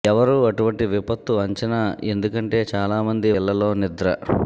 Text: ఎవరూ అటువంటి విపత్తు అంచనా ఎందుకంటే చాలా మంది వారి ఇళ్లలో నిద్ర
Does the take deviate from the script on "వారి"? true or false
true